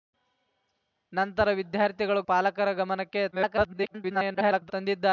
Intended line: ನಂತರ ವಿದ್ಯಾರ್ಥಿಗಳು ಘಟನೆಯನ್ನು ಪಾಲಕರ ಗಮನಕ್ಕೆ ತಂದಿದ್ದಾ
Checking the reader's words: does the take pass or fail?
fail